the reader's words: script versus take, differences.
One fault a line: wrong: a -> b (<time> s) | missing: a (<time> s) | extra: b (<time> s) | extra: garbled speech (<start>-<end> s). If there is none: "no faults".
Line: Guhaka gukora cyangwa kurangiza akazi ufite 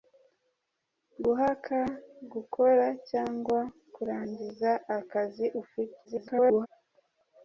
extra: garbled speech (6.0-6.7 s)